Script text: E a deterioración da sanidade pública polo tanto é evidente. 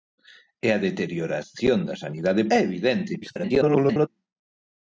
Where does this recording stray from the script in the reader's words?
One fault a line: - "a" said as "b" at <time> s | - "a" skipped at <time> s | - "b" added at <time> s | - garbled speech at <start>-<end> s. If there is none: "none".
- "pública polo tanto" skipped at 2.4 s
- garbled speech at 3.2-4.1 s